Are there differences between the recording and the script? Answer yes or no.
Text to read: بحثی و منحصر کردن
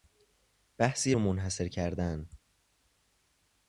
no